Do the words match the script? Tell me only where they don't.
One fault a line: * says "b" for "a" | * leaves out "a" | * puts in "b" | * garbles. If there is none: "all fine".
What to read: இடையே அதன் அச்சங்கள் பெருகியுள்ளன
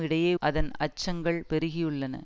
all fine